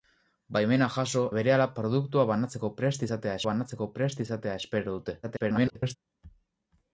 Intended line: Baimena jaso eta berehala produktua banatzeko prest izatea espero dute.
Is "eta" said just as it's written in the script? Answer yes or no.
no